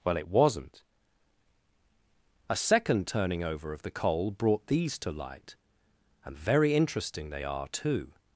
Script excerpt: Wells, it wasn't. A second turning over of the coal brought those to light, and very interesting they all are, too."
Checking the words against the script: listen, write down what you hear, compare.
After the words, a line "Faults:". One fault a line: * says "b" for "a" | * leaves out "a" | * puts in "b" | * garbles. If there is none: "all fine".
Well, it wasn't. A second turning over of the coal brought these to light, and very interesting they are, too."
Faults:
* says "Well" for "Wells"
* says "these" for "those"
* leaves out "all"